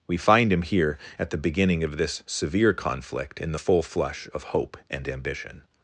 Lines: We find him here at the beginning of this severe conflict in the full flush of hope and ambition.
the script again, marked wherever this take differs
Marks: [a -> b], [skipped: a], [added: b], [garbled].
We find him here at the beginning of this severe conflict in the full flush of hope and ambition.